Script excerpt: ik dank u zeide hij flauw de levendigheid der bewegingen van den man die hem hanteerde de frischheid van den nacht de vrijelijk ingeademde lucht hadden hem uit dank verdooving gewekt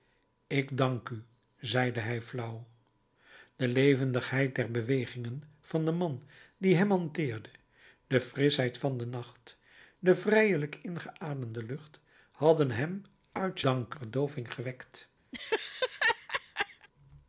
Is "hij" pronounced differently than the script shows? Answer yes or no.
no